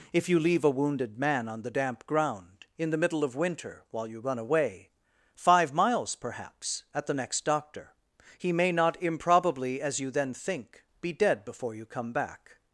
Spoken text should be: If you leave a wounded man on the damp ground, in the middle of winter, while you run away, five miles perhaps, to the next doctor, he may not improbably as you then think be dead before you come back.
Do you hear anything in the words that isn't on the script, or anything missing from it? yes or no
yes